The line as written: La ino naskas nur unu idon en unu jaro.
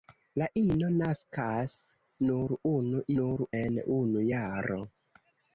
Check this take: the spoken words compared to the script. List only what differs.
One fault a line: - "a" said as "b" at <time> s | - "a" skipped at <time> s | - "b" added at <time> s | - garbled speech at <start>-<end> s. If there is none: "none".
- "idon" said as "nur" at 3.2 s